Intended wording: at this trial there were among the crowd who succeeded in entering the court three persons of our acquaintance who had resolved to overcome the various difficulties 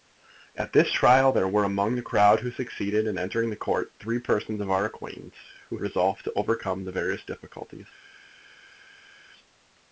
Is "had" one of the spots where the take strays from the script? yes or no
yes